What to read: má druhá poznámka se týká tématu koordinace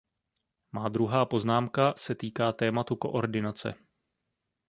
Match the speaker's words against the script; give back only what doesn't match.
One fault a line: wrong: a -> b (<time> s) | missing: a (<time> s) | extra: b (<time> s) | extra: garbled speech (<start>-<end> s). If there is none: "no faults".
no faults